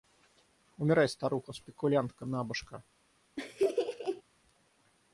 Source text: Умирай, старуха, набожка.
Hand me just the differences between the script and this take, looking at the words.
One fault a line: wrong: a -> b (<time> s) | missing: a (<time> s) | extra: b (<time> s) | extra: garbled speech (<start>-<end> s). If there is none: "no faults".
extra: спекулянтка (1.5 s)